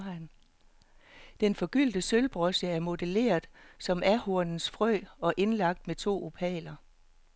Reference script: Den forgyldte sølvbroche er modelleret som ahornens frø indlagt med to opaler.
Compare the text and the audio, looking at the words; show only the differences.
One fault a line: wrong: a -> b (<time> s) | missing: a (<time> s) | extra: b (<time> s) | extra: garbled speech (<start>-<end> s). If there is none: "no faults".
extra: og (5.2 s)